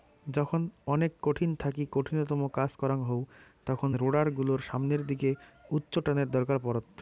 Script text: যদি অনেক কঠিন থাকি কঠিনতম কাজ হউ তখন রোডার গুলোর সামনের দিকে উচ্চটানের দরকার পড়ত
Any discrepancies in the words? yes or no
yes